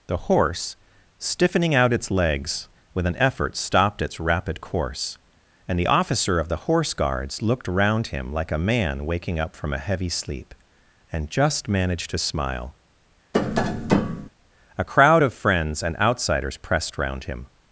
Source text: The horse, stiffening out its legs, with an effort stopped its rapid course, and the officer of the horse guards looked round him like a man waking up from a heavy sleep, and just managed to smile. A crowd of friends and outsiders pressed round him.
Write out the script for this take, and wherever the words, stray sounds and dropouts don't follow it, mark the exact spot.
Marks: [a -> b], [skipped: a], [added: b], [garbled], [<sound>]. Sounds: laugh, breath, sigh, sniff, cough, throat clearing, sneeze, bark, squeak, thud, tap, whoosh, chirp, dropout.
The horse, stiffening out its legs, with an effort stopped its rapid course, and the officer of the horse guards looked round him like a man waking up from a heavy sleep, and just managed to smile. [tap] A crowd of friends and outsiders pressed round him.